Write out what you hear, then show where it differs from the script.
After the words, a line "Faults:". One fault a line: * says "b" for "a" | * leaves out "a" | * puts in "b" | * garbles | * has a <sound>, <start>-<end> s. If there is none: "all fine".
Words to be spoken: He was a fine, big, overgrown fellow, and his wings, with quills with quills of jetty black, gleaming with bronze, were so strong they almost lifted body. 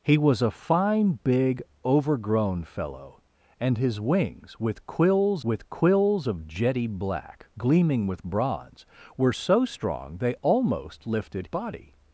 He was a fine, big, overgrown fellow, and his wings, with quills with quills of jetty black, gleaming with bronze, were so strong they almost lifted body.
Faults:
all fine